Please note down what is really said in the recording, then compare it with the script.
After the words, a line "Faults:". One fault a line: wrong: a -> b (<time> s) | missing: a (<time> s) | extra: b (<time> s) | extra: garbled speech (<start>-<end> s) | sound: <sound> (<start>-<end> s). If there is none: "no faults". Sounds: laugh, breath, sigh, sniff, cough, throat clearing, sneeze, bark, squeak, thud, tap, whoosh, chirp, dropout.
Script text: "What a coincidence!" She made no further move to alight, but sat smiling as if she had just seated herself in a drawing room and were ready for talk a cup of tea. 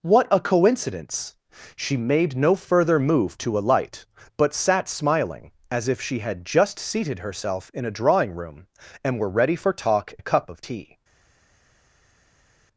"What a coincidence!" She made no further move to alight, but sat smiling as if she had just seated herself in a drawing room and were ready for talk a cup of tea.
Faults:
no faults